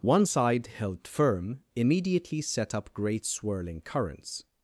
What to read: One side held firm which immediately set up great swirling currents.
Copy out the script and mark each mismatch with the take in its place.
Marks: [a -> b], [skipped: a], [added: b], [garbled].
One side held firm [skipped: which] immediately set up great swirling currents.